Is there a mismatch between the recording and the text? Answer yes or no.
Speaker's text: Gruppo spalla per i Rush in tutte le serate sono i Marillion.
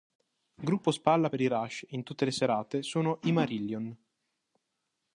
no